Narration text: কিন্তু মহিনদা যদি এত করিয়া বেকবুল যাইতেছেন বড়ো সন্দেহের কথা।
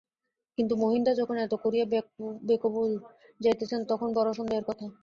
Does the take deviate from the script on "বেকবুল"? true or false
false